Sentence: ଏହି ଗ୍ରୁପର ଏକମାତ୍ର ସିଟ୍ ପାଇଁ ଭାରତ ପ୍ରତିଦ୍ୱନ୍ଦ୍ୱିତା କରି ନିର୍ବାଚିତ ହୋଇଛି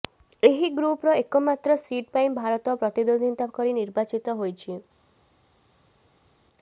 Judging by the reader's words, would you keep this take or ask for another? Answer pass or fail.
pass